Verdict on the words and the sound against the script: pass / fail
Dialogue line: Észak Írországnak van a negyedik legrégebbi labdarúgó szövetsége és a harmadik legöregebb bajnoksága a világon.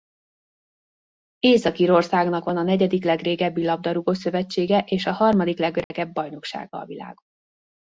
fail